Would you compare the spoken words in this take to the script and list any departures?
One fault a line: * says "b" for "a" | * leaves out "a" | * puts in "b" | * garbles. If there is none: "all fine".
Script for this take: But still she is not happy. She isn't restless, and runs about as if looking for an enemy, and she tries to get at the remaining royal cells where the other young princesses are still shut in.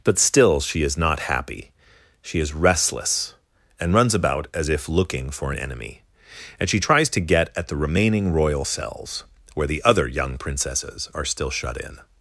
* says "is" for "isn't"